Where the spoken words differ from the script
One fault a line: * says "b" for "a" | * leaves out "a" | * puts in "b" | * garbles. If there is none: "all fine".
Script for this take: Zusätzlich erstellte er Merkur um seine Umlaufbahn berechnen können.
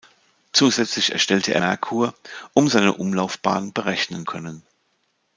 all fine